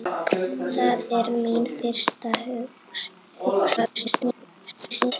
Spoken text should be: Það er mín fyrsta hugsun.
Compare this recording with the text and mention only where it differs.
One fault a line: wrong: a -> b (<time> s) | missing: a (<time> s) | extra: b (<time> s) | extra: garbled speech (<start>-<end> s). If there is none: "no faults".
extra: garbled speech (3.8-5.1 s)